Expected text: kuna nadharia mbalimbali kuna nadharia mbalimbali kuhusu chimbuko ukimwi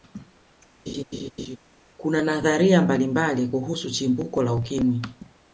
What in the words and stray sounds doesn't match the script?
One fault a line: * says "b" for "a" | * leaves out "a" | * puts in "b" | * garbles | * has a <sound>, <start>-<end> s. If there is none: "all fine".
* has a laugh, 0.9-1.6 s
* leaves out "kuna nadharia mbalimbali"
* puts in "la"